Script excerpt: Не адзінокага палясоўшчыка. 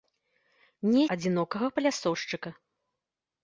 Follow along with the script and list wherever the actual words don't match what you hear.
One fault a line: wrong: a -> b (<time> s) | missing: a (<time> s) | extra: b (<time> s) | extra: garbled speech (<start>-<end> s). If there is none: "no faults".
no faults